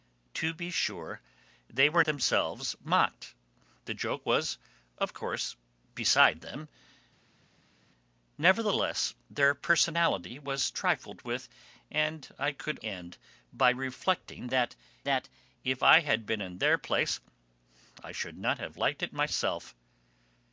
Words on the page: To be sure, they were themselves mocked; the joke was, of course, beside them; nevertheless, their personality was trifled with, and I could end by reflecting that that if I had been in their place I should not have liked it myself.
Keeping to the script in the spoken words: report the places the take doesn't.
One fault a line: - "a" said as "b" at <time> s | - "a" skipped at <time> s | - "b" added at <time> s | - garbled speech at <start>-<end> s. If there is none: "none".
none